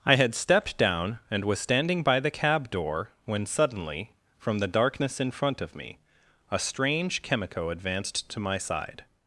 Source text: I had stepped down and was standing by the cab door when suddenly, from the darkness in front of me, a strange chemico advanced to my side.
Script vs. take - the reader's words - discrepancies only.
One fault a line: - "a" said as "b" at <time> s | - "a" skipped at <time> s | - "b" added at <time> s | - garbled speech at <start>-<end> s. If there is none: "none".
none